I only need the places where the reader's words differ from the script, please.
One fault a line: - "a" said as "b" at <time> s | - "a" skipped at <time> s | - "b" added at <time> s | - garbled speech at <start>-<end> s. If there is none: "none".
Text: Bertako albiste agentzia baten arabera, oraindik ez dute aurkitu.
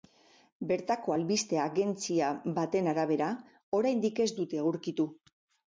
none